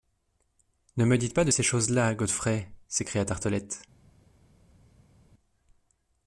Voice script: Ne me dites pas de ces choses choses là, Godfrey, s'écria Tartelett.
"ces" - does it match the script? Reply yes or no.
yes